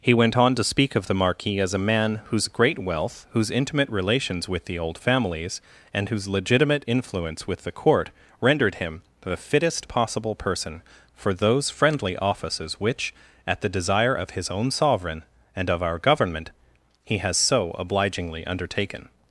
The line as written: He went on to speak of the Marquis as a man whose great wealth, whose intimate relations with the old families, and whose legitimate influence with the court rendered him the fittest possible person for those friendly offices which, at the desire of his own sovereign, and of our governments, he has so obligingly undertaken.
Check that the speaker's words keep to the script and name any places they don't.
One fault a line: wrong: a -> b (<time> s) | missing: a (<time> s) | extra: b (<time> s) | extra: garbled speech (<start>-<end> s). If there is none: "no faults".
wrong: governments -> government (16.0 s)